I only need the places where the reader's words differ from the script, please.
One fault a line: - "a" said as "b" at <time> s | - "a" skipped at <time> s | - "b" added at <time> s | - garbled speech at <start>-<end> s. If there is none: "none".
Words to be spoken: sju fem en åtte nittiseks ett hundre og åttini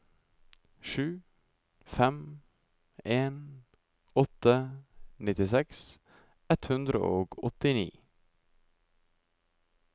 none